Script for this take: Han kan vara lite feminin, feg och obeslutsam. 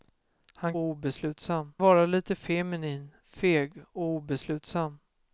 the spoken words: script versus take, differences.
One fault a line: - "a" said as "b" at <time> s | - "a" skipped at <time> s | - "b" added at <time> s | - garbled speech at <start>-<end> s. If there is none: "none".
- "kan" said as "obeslutsam" at 0.8 s